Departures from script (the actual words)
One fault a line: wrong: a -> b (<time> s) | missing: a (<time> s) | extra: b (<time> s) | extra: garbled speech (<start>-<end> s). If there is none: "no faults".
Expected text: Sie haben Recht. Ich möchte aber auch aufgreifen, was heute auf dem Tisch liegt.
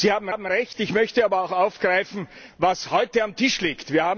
extra: haben (0.3 s)